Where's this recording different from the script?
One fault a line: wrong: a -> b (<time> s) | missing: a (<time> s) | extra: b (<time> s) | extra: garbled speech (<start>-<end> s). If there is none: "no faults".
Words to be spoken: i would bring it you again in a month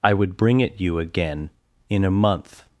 no faults